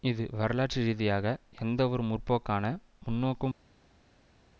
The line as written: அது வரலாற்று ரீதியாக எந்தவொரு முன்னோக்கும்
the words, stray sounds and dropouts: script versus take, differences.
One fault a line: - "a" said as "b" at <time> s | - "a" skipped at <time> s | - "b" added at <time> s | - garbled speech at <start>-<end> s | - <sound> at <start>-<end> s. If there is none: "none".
- "அது" said as "இது" at 0.0 s
- "முற்போக்கான" added at 2.0 s